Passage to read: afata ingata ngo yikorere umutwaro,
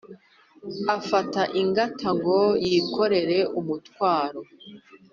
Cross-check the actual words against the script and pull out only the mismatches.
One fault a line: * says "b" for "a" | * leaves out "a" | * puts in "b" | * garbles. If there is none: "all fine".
all fine